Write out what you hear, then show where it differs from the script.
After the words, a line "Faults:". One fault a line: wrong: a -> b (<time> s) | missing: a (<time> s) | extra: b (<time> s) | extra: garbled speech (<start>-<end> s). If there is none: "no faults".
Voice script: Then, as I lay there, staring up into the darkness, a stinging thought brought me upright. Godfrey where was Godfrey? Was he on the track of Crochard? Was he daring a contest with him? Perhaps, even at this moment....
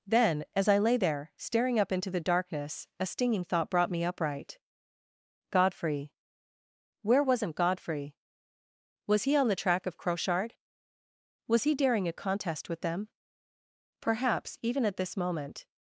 Then, as I lay there, staring up into the darkness, a stinging thought brought me upright. Godfrey where wasn't Godfrey? Was he on the track of Crochard? Was he daring a contest with them? Perhaps, even at this moment....
Faults:
wrong: was -> wasn't (7.2 s)
wrong: him -> them (12.8 s)